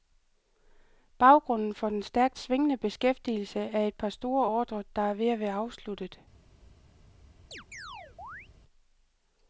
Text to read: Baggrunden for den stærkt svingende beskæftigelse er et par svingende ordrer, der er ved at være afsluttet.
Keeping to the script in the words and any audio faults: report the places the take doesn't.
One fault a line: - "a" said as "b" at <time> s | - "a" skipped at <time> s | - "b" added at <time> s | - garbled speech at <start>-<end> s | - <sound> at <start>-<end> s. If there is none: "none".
- "svingende" said as "store" at 4.1 s
- chirp at 7.5-8.5 s